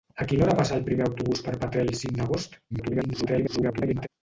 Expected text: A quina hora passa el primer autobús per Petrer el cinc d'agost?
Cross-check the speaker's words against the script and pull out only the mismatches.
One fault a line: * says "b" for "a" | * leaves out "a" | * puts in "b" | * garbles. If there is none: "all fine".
* garbles